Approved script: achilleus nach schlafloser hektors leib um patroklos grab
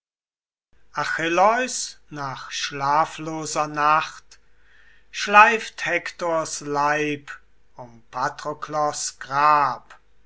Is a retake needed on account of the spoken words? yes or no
yes